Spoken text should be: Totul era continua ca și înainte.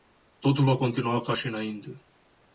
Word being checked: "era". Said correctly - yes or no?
no